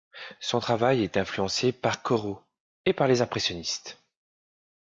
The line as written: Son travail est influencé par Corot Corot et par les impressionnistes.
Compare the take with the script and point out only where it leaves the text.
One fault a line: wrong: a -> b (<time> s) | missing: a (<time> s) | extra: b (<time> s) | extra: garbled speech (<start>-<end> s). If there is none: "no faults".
missing: Corot (2.4 s)